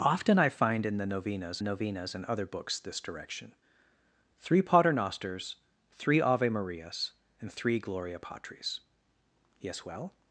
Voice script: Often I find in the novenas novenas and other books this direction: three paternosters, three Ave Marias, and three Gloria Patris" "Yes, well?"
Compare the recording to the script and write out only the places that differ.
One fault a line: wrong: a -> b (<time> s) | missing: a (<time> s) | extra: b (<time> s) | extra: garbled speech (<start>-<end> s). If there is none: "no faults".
no faults